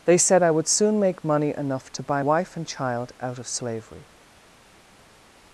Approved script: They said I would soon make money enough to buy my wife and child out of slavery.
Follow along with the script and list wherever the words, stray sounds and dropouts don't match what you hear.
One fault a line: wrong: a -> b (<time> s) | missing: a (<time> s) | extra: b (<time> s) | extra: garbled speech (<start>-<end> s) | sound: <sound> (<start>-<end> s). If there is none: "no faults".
missing: my (2.2 s)